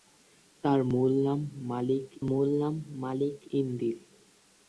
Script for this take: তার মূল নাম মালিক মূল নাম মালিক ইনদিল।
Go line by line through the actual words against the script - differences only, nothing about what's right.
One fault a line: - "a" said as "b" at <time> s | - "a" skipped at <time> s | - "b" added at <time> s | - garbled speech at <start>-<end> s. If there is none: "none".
none